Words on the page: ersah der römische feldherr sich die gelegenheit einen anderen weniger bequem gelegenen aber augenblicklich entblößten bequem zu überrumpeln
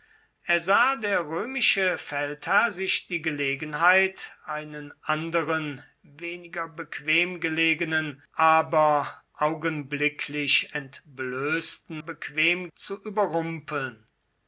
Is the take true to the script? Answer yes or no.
yes